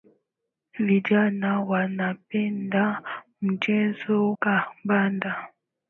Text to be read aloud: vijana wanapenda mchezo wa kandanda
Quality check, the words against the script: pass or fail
fail